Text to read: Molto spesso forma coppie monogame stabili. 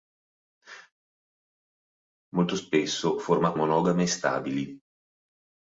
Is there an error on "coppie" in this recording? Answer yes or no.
yes